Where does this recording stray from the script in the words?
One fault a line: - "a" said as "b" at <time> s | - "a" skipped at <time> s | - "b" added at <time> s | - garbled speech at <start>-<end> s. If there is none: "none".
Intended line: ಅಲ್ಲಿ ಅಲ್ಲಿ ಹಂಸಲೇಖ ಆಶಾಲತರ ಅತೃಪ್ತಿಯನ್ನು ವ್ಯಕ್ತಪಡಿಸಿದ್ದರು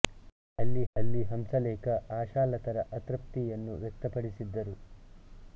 none